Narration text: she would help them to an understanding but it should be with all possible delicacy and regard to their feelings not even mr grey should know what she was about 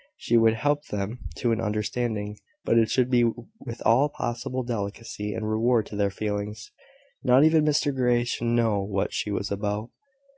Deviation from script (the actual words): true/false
false